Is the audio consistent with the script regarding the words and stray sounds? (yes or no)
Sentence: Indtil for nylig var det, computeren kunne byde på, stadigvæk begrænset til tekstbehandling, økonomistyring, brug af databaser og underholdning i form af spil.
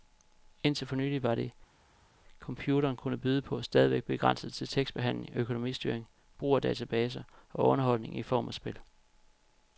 yes